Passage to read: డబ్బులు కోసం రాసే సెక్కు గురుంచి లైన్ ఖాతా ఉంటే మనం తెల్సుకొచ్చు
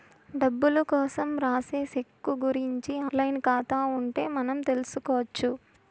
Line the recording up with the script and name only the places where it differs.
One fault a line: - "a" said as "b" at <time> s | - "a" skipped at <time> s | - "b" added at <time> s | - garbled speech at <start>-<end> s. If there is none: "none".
none